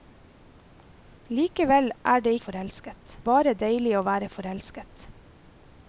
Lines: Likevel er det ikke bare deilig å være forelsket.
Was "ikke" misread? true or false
true